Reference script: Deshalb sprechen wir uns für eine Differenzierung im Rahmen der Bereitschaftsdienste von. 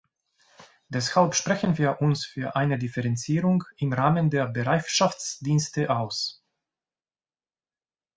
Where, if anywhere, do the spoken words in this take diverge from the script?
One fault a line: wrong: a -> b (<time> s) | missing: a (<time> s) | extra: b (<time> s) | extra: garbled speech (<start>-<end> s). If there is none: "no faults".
wrong: von -> aus (5.9 s)